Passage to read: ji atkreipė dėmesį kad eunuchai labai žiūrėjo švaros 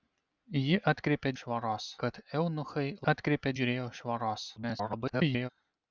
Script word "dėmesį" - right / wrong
wrong